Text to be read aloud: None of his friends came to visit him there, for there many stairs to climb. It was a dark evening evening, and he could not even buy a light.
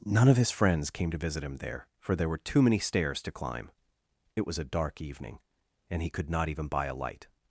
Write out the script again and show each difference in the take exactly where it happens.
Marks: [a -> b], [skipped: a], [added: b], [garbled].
None of his friends came to visit him there, for there [added: were too] many stairs to climb. It was a dark evening [skipped: evening,] and he could not even buy a light.